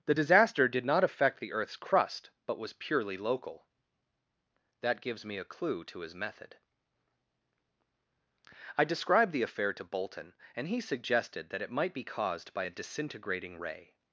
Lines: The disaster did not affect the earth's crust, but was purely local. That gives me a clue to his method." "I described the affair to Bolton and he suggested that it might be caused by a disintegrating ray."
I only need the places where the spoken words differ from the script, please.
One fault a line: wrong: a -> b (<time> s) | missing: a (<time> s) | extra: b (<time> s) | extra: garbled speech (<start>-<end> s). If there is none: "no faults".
no faults